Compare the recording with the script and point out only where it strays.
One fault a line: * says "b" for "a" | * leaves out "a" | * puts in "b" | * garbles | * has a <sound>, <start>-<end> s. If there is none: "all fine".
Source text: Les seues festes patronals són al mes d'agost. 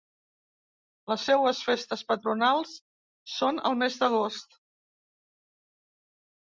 all fine